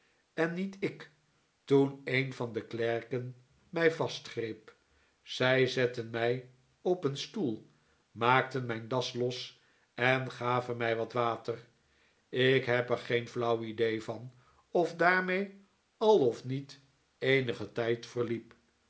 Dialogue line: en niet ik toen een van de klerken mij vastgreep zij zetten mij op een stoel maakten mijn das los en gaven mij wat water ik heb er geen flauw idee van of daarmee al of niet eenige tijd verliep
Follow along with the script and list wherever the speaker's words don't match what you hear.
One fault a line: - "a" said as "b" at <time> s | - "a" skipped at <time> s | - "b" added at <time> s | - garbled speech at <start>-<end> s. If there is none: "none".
none